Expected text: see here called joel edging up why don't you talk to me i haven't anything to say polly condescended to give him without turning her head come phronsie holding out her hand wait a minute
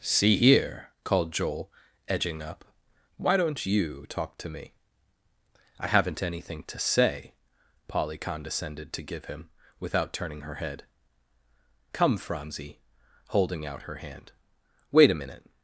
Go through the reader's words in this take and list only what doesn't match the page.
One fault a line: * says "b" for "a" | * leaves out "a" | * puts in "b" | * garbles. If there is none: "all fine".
all fine